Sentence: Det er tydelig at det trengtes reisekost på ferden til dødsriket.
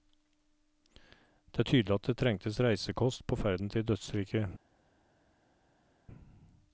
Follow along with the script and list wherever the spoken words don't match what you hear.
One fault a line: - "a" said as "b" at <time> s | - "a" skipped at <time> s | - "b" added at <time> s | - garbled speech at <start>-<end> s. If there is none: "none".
none